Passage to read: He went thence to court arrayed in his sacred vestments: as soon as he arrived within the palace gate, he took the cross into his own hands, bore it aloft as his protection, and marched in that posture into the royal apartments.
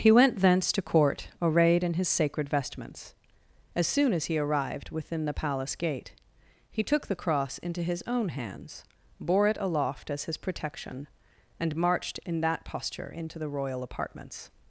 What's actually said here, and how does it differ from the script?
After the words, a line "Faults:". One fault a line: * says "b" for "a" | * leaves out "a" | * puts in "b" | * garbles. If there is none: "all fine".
He went thence to court arrayed in his sacred vestments: as soon as he arrived within the palace gate, he took the cross into his own hands, bore it aloft as his protection, and marched in that posture into the royal apartments.
Faults:
all fine